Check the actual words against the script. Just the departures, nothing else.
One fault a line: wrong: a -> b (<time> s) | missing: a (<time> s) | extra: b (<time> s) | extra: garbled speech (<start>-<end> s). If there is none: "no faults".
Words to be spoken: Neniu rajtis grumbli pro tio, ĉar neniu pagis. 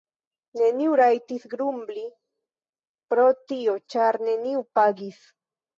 no faults